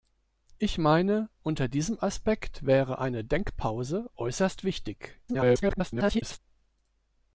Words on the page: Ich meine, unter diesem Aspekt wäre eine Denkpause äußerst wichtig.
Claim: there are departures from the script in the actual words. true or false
true